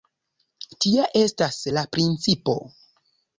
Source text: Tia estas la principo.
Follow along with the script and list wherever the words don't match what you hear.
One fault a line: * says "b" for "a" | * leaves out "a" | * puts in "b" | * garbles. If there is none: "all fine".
all fine